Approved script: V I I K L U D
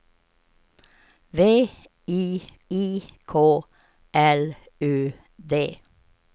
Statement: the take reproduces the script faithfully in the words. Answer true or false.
true